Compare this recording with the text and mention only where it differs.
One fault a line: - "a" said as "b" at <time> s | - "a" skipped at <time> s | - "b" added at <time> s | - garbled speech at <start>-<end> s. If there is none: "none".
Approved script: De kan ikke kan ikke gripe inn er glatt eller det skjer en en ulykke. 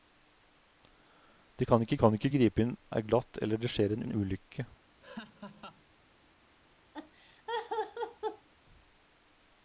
none